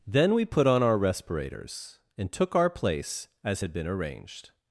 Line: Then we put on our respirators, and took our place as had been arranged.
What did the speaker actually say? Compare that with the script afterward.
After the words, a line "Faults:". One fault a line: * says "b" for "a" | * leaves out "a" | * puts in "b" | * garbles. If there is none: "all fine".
Then we put on our respirators, and took our place as had been arranged.
Faults:
all fine